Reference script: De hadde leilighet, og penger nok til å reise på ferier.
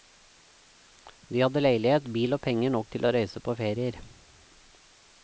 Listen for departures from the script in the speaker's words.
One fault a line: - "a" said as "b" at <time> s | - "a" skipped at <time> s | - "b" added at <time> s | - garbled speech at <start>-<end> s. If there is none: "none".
- "bil" added at 2.1 s